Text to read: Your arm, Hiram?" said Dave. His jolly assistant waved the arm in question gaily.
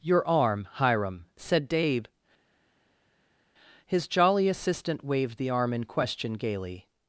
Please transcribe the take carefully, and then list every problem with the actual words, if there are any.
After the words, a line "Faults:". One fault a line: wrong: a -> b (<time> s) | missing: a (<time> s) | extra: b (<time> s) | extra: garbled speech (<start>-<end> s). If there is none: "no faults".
Your arm, Hiram?" said Dave. His jolly assistant waved the arm in question gaily.
Faults:
no faults